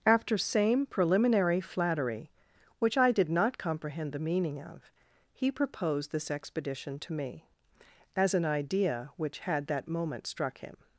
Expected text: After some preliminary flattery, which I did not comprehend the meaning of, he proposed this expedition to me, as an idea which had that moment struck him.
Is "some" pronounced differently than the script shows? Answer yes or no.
yes